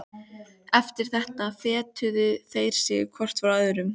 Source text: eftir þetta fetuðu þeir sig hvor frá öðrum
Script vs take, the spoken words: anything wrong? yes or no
no